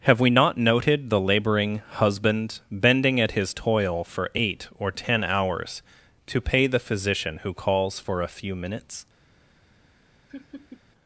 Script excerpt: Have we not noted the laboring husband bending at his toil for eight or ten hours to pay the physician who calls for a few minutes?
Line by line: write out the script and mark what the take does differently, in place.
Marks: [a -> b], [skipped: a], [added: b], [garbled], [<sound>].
Have we not noted the laboring husband bending at his toil for eight or ten hours to pay the physician who calls for a few minutes? [laugh]